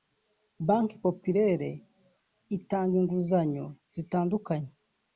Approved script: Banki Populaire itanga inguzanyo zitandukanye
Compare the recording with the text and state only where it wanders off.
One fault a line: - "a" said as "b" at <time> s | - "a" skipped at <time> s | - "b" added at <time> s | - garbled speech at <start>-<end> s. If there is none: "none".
none